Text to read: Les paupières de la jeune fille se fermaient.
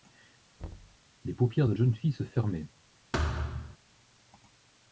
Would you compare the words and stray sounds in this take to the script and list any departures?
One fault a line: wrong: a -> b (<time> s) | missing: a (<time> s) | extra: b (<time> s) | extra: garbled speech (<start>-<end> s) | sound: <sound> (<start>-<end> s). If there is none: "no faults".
sound: thud (0.6-1.0 s)
missing: la (1.7 s)
sound: thud (3.1-3.8 s)